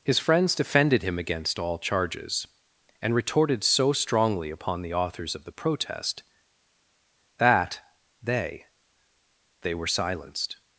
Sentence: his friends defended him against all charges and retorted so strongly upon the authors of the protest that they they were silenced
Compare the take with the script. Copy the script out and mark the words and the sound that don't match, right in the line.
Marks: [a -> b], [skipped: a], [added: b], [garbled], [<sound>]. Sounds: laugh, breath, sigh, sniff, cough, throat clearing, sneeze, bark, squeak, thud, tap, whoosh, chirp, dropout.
his friends defended him against all charges and retorted so strongly upon the authors of the protest that they they were silenced